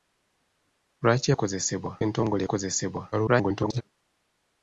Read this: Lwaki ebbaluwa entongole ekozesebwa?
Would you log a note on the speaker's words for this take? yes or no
yes